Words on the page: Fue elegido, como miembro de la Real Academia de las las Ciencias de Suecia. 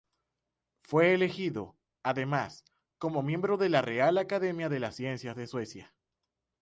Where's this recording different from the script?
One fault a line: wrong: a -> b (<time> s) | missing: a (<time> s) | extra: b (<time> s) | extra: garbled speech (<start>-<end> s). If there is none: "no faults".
extra: además (2.0 s)
missing: las (5.0 s)